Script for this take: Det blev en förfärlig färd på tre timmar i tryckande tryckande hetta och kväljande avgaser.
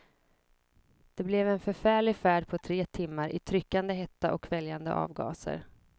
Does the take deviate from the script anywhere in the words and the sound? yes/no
yes